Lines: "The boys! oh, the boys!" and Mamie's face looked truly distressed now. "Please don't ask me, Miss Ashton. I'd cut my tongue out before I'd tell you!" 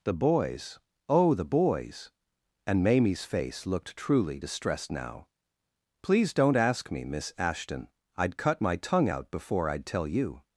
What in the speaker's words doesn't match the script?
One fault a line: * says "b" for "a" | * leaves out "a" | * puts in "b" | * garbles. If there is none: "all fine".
all fine